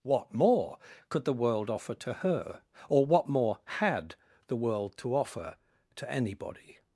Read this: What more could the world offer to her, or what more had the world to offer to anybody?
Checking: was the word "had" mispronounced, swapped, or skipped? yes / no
no